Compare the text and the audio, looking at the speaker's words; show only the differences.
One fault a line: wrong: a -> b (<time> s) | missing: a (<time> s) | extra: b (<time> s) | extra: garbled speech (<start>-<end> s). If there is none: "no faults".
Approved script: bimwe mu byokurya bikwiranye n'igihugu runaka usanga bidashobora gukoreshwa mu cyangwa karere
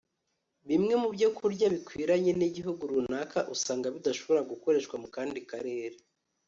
wrong: cyangwa -> kandi (5.2 s)